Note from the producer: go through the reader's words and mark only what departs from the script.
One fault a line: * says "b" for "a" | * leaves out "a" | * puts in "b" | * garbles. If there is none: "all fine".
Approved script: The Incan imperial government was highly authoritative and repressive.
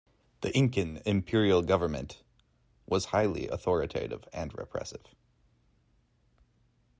all fine